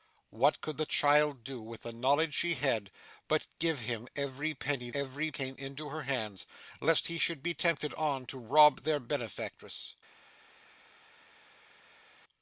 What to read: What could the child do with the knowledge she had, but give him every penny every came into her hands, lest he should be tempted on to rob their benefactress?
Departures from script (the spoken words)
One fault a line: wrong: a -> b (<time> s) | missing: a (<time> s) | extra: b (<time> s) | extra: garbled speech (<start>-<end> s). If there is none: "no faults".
no faults